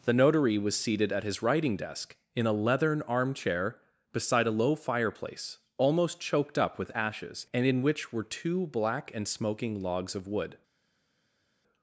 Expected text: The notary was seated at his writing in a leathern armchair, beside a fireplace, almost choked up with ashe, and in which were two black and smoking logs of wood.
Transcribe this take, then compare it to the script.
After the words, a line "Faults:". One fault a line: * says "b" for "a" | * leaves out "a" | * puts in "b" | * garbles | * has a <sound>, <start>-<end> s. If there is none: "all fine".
The notary was seated at his writing desk, in a leathern armchair, beside a low fireplace, almost choked up with ashes, and in which were two black and smoking logs of wood.
Faults:
* puts in "desk"
* puts in "low"
* says "ashes" for "ashe"